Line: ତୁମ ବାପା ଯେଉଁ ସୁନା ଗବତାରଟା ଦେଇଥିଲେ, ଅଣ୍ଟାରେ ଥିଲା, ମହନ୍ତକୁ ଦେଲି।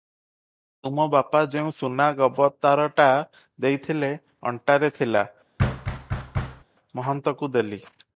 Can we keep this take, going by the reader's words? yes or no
yes